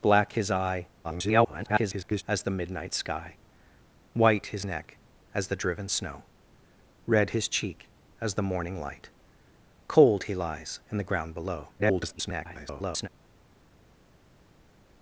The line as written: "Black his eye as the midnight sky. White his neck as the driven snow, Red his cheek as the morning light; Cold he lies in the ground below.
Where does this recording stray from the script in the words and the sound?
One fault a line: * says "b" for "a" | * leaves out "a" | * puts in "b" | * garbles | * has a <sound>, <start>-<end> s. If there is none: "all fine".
* garbles
* garbles